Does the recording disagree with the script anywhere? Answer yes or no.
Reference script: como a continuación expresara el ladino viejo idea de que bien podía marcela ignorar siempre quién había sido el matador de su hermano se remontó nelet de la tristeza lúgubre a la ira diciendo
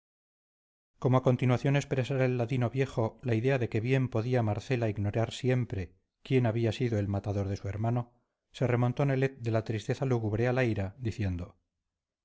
yes